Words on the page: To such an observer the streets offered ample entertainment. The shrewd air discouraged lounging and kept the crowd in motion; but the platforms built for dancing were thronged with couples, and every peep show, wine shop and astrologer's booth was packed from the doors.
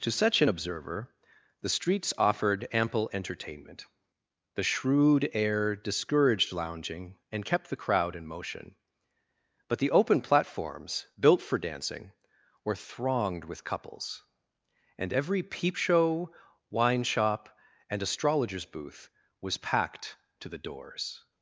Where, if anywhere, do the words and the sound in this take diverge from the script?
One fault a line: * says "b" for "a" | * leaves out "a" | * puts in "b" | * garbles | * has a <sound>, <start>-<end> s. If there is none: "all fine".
* puts in "open"
* says "to" for "from"